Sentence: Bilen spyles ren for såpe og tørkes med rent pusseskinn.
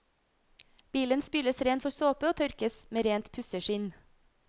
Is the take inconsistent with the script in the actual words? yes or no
no